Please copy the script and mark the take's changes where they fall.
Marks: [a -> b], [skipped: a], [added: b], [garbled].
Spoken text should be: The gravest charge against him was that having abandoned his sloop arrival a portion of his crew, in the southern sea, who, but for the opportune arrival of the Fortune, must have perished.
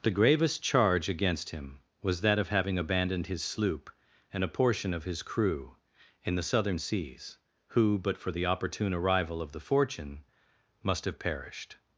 The gravest charge against him was that [added: of] having abandoned his sloop [arrival -> and] a portion of his crew, in the southern [sea, -> seas] who, but for the opportune arrival of the Fortune, must have perished.